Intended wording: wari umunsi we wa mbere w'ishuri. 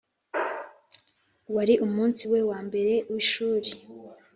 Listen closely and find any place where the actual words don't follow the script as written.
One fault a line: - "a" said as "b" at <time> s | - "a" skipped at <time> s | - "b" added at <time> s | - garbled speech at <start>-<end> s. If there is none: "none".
none